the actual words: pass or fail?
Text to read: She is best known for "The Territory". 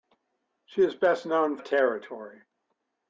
fail